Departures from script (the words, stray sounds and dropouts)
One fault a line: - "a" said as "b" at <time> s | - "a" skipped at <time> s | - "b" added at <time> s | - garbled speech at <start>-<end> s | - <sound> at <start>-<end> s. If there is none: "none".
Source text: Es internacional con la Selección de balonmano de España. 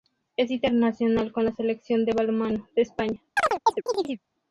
- chirp at 3.4-4.2 s